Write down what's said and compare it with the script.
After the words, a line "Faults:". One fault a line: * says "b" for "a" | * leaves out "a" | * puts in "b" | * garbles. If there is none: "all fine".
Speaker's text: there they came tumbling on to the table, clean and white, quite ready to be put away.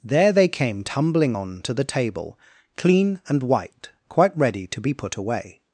there they came tumbling on to the table, clean and white, quite ready to be put away.
Faults:
all fine